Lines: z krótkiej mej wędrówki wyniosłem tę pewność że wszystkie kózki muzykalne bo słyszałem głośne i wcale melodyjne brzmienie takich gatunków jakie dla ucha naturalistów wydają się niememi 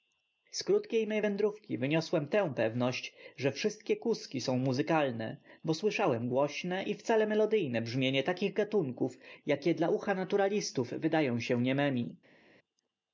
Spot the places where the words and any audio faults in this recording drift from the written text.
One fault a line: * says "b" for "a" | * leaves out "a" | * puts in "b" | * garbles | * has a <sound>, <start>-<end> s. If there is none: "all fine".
* puts in "są"